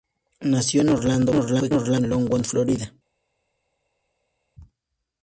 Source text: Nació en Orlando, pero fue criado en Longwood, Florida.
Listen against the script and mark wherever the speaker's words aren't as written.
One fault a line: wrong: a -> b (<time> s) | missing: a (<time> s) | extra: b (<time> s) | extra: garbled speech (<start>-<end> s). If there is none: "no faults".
wrong: criado -> pero (1.7 s)